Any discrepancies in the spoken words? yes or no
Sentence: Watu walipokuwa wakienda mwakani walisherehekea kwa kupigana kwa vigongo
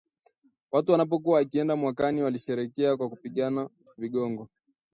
yes